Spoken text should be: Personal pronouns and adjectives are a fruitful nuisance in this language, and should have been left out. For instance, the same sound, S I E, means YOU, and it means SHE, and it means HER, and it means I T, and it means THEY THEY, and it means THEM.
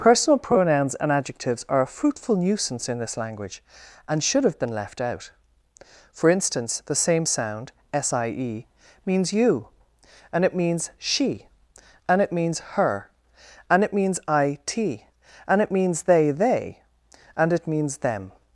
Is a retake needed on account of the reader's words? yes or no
no